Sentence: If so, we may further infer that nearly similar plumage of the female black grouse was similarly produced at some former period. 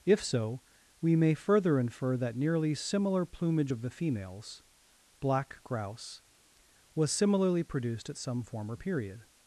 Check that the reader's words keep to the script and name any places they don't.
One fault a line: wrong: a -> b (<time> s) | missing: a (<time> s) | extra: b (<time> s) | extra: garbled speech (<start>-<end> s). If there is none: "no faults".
wrong: female -> females (3.9 s)